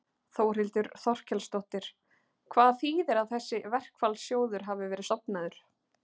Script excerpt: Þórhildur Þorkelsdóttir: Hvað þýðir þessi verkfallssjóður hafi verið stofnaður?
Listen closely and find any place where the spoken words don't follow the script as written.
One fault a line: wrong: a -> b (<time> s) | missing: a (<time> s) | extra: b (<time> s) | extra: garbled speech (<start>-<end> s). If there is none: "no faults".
extra: að (3.2 s)